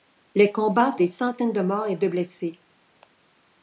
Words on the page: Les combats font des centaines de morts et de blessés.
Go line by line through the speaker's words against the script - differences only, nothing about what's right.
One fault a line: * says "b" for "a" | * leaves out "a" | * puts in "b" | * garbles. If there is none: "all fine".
* leaves out "font"